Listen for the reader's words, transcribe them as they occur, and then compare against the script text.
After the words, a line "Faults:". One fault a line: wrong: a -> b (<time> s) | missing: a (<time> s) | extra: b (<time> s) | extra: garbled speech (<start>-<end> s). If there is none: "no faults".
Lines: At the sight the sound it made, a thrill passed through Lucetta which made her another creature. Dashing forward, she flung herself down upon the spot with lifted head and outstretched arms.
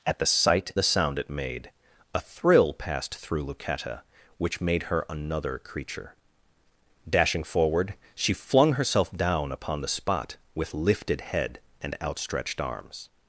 At the sight the sound it made, a thrill passed through Lucetta which made her another creature. Dashing forward, she flung herself down upon the spot with lifted head and outstretched arms.
Faults:
no faults